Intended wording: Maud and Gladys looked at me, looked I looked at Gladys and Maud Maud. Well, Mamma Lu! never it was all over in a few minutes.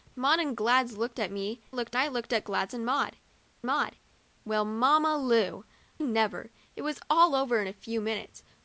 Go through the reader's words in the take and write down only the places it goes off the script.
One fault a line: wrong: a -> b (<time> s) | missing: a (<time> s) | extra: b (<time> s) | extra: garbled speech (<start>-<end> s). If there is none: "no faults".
no faults